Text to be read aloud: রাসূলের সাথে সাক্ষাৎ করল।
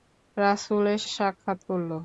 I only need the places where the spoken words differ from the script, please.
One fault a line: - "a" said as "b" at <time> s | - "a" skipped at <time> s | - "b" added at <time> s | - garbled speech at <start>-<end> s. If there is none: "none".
- "সাথে" skipped at 1.0 s